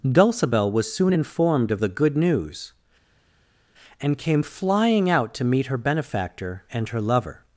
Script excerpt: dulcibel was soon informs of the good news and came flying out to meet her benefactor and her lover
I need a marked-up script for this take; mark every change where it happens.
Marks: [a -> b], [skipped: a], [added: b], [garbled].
dulcibel was soon [informs -> informed] of the good news and came flying out to meet her benefactor and her lover